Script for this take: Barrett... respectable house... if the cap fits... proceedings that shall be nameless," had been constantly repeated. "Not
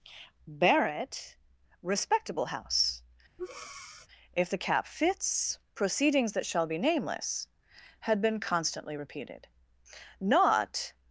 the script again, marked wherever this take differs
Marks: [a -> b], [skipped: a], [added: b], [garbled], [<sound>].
Barrett... respectable house... [breath] if the cap fits... proceedings that shall be nameless," had been constantly repeated. "Not